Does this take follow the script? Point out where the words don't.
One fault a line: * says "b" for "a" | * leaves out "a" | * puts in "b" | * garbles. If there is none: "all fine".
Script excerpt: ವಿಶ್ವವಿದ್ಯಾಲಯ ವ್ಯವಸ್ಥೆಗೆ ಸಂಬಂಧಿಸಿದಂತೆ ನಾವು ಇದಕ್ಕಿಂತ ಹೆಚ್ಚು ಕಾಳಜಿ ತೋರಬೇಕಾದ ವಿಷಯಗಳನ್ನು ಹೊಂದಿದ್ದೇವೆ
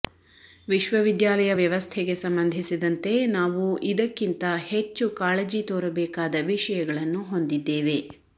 all fine